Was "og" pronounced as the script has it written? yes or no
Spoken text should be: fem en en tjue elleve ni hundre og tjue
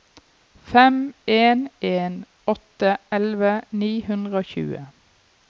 yes